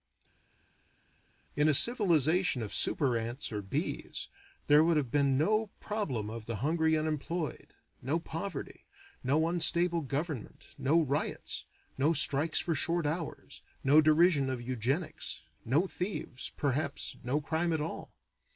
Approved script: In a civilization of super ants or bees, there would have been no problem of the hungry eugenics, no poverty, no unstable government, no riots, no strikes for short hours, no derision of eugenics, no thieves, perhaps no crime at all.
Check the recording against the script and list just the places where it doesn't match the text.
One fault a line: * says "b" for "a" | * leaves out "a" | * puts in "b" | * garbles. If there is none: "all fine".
* says "unemployed" for "eugenics"